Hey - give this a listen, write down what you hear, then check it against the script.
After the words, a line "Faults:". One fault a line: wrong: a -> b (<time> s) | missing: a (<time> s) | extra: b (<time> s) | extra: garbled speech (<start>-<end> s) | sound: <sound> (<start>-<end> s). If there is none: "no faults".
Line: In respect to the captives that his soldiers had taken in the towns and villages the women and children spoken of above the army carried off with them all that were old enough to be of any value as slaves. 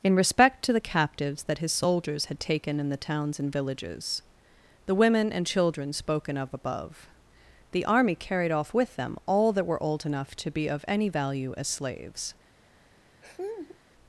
In respect to the captives that his soldiers had taken in the towns and villages the women and children spoken of above the army carried off with them all that were old enough to be of any value as slaves.
Faults:
sound: laugh (13.2-13.8 s)